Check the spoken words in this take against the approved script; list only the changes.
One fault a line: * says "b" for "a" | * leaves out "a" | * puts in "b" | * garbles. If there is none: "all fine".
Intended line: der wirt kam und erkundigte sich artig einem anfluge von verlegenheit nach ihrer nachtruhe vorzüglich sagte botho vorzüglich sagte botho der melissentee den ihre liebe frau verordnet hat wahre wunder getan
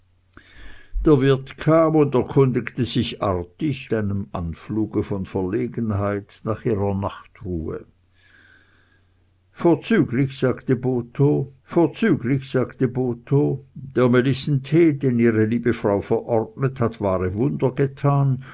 all fine